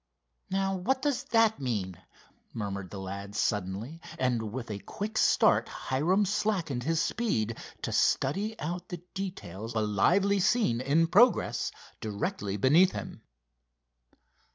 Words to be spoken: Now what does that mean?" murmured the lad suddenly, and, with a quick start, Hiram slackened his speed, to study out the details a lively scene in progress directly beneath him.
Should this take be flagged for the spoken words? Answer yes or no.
no